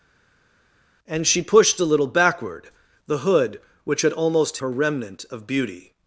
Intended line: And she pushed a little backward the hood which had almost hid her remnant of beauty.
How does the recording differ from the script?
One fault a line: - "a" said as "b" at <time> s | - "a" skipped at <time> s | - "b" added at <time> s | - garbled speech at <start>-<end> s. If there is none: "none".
- "hid" skipped at 4.6 s